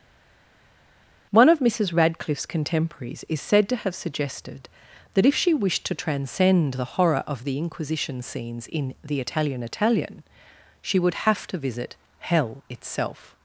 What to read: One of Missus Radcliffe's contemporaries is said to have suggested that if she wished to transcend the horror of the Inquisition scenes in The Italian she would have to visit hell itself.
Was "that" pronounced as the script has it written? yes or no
yes